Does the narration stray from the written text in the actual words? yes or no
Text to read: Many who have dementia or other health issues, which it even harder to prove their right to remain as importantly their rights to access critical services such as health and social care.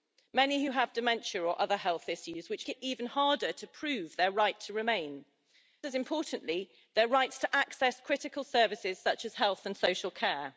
no